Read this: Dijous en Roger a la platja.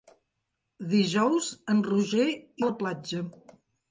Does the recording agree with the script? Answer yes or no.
yes